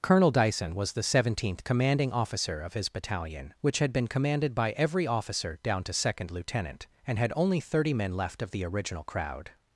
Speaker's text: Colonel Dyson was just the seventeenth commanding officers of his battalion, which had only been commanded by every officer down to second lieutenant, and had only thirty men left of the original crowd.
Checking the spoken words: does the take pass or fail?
fail